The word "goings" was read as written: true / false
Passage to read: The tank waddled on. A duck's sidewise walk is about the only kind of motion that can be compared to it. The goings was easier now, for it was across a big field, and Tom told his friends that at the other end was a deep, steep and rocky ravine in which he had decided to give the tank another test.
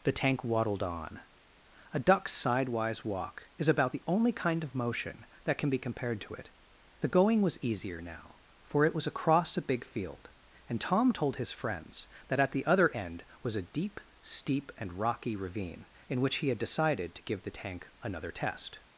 false